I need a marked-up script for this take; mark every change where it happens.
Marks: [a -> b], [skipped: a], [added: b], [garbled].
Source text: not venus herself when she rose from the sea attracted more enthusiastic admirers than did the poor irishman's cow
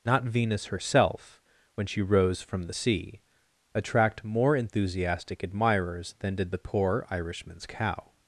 not venus herself when she rose from the sea [attracted -> attract] more enthusiastic admirers than did the poor irishman's cow